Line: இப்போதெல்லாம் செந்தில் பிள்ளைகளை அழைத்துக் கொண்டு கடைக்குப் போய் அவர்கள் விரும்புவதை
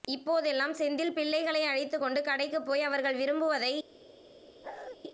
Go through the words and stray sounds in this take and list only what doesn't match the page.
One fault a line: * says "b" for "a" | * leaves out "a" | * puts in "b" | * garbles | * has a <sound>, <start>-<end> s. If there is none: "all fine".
* has a bark, 4.6-5.0 s